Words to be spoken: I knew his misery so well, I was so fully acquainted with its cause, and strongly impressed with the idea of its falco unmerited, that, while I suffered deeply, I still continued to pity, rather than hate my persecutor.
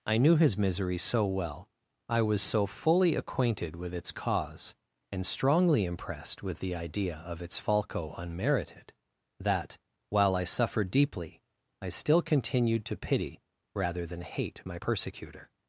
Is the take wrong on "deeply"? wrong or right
right